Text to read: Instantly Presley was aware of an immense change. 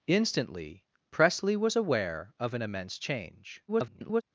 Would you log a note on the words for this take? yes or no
yes